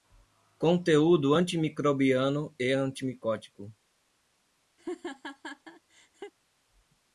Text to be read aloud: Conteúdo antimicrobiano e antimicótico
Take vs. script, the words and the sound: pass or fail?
fail